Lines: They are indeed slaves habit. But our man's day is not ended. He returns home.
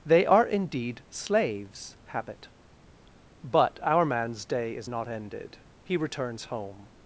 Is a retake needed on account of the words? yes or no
no